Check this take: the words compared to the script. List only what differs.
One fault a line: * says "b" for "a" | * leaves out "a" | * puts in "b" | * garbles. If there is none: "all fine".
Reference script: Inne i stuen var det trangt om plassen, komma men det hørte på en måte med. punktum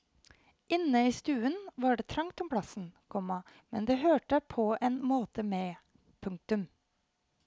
all fine